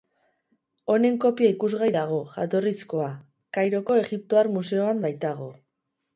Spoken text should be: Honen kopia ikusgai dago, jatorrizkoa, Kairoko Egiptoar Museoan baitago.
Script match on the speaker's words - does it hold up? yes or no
yes